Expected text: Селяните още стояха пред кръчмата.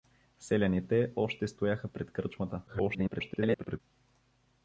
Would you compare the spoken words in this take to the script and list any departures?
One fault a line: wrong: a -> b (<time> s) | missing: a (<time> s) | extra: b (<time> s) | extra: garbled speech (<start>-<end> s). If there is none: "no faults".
extra: garbled speech (2.7-3.8 s)